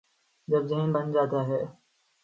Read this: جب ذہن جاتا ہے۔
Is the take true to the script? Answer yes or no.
no